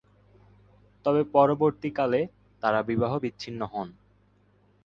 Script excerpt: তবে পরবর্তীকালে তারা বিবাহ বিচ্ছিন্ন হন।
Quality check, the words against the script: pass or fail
pass